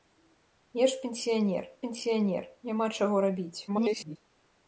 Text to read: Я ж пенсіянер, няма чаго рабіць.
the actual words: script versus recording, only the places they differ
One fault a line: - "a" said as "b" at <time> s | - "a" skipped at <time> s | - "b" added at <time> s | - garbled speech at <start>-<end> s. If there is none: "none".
- "пенсіянер" added at 1.8 s
- garbled speech at 3.7-4.2 s